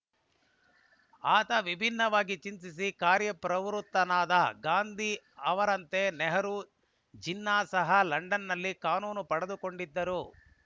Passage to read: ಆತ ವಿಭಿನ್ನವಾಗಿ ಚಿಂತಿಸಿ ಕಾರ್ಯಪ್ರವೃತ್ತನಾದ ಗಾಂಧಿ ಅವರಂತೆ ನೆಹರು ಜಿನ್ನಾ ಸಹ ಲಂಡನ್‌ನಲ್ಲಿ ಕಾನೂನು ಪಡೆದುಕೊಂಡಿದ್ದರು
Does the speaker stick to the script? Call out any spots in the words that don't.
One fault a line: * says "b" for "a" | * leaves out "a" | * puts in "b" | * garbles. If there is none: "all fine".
all fine